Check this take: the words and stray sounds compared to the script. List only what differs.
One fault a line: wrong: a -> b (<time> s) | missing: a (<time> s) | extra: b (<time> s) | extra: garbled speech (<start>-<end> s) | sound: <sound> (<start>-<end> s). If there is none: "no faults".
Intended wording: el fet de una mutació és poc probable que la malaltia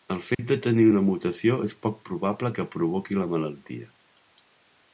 sound: dropout (0.3-0.4 s)
extra: tenir (0.7 s)
extra: provoqui (2.8 s)